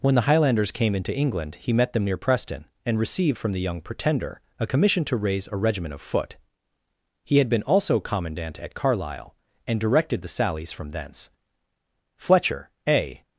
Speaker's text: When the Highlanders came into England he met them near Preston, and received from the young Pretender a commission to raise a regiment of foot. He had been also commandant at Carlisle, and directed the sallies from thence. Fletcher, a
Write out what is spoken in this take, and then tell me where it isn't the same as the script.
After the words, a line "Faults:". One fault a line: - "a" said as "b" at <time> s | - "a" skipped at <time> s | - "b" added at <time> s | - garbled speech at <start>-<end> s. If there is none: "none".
When the Highlanders came into England he met them near Preston, and received from the young Pretender a commission to raise a regiment of foot. He had been also commandant at Carlisle, and directed the sallies from thence. Fletcher, a
Faults:
none